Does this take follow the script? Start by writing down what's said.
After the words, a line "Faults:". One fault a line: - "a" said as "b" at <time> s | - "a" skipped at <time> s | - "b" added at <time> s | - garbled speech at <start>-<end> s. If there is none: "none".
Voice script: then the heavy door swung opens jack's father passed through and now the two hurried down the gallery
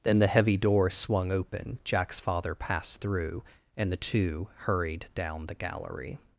then the heavy door swung open jack's father passed through and the two hurried down the gallery
Faults:
- "opens" said as "open" at 1.3 s
- "now" skipped at 3.9 s